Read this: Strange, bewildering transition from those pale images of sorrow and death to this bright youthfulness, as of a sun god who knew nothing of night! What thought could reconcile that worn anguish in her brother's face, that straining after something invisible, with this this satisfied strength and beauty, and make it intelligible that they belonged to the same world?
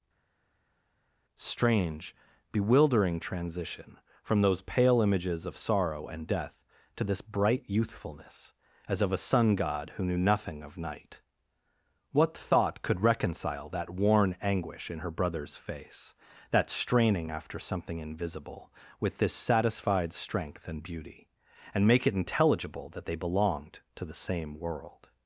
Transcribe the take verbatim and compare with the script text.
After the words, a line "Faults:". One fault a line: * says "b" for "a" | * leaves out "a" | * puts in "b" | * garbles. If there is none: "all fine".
Strange, bewildering transition from those pale images of sorrow and death to this bright youthfulness, as of a sun god who knew nothing of night! What thought could reconcile that worn anguish in her brother's face, that straining after something invisible, with this satisfied strength and beauty, and make it intelligible that they belonged to the same world?
Faults:
* leaves out "this"